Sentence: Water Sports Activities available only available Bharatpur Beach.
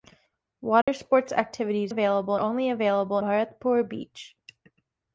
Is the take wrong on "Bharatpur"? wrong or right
right